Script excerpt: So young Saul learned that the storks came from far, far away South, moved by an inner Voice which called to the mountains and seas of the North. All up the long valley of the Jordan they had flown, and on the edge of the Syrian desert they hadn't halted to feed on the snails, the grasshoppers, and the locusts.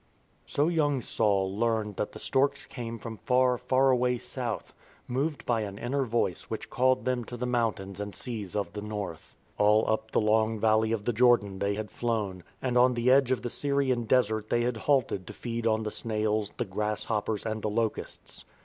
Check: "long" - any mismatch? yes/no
no